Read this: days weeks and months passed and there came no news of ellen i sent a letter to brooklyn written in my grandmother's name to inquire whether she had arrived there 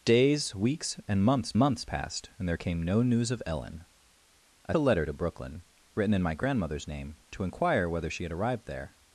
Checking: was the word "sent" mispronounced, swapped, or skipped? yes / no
yes